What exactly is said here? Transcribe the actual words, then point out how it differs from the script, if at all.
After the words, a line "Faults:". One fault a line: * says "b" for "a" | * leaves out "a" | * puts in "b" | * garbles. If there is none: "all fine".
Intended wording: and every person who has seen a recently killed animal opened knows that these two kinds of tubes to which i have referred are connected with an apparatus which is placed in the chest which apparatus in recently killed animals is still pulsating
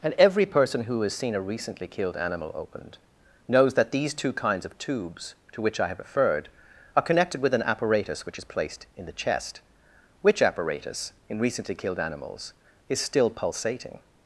and every person who has seen a recently killed animal opened knows that these two kinds of tubes to which i have referred are connected with an apparatus which is placed in the chest which apparatus in recently killed animals is still pulsating
Faults:
all fine